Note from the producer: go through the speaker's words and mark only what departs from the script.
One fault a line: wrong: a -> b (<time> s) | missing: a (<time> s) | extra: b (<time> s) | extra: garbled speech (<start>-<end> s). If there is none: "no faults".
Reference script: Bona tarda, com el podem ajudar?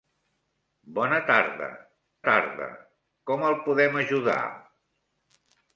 extra: tarda (2.3 s)